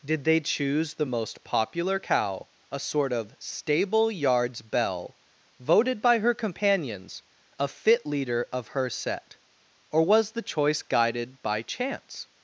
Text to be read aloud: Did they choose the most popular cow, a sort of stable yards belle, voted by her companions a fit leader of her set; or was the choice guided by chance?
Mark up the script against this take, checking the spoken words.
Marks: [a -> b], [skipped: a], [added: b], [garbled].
Did they choose the most popular cow, a sort of stable yards belle, voted by her companions a fit leader of her set; or was the choice guided by chance?